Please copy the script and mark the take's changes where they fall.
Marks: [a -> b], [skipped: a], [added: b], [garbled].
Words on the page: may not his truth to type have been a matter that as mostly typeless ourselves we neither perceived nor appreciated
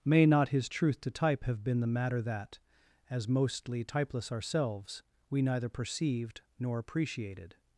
may not his truth to type have been [a -> the] matter that as mostly typeless ourselves we neither perceived nor appreciated